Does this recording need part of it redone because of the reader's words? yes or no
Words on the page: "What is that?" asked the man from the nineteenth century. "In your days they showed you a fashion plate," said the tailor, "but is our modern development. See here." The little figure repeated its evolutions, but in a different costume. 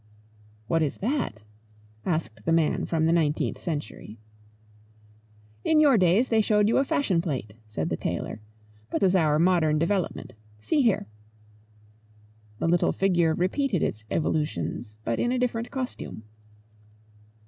no